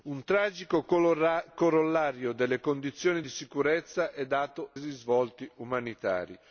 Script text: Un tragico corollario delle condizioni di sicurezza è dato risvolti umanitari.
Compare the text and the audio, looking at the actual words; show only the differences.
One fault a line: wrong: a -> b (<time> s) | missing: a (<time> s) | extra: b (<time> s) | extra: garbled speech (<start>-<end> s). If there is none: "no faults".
no faults